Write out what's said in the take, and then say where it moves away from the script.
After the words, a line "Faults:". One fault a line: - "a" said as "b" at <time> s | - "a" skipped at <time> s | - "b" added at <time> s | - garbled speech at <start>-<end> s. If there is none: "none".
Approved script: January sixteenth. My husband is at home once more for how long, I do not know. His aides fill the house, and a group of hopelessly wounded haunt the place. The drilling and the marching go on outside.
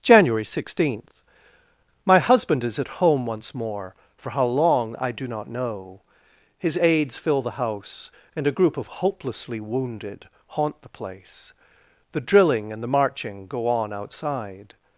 January sixteenth. My husband is at home once more for how long, I do not know. His aides fill the house, and a group of hopelessly wounded haunt the place. The drilling and the marching go on outside.
Faults:
none